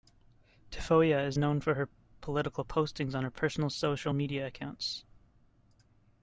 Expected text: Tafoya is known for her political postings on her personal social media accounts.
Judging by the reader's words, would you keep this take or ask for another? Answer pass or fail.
pass